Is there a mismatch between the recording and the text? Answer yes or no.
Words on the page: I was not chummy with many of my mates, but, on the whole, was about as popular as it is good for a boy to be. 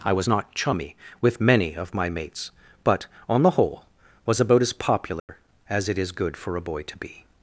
no